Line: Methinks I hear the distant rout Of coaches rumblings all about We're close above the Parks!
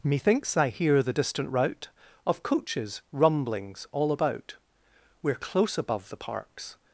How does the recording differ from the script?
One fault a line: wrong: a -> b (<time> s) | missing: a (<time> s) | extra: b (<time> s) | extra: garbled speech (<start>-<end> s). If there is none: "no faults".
no faults